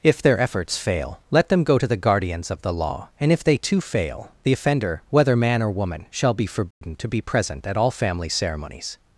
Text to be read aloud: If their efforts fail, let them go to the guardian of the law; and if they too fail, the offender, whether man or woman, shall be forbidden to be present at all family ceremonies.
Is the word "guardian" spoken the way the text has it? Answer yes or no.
no